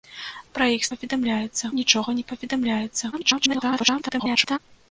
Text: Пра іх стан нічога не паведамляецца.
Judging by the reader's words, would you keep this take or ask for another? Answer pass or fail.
fail